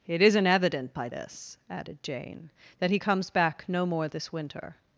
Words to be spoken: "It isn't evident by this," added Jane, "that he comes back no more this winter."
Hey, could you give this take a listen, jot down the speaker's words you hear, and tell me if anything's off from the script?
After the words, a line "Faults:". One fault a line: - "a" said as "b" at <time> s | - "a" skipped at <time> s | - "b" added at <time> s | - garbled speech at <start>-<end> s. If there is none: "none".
"It isn't evident by this," added Jane, "that he comes back no more this winter."
Faults:
none